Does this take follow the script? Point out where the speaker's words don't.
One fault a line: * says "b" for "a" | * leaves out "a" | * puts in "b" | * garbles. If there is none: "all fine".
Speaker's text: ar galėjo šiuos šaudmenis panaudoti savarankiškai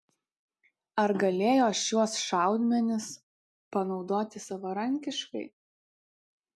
all fine